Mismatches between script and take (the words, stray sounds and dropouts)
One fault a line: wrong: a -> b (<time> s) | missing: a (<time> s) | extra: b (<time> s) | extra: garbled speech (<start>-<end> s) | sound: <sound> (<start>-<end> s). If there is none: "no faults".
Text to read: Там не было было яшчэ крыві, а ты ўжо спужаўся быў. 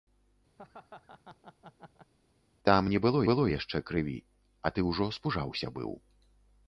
sound: laugh (0.6-2.1 s)